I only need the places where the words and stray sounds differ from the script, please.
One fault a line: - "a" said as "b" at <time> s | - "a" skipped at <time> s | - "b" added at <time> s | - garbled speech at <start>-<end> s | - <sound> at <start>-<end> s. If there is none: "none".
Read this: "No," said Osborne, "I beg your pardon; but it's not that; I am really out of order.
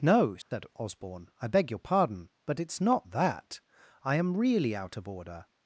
- dropout at 0.4-0.5 s